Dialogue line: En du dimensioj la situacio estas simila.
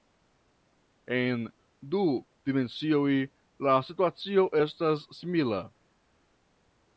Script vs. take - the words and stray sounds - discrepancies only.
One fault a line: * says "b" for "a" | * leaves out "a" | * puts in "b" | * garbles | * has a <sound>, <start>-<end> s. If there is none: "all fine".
all fine